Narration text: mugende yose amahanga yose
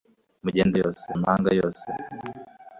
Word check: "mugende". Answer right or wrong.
right